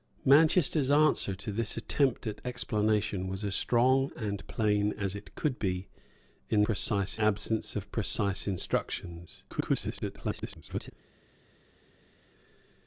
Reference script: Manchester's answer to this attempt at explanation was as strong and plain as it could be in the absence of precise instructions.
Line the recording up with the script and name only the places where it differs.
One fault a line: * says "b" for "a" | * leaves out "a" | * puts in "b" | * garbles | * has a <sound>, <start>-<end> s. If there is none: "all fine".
* says "precise" for "the"
* garbles